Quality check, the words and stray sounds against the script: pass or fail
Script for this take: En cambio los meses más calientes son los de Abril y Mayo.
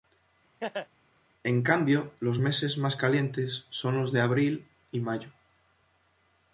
fail